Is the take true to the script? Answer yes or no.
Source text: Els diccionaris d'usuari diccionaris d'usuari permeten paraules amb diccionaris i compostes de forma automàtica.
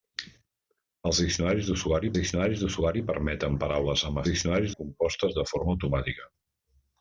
yes